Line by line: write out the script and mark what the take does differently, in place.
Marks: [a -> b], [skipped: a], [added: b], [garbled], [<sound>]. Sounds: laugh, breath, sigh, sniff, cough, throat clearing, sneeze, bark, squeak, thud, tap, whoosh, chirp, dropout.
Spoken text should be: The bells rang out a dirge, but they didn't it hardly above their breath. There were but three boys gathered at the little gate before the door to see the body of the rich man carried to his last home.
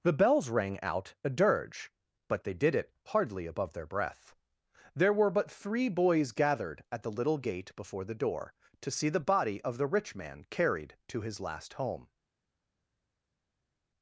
The bells rang out a dirge, but they [didn't -> did] it hardly above their breath. There were but three boys gathered at the little gate before the door to see the body of the rich man carried to his last home.